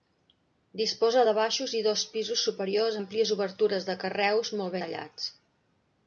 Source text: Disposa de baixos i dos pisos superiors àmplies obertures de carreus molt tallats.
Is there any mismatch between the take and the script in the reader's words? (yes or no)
no